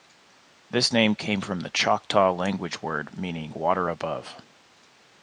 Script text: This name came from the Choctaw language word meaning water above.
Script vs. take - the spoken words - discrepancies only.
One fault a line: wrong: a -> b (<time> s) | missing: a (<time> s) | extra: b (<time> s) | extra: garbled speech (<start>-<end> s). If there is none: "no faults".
no faults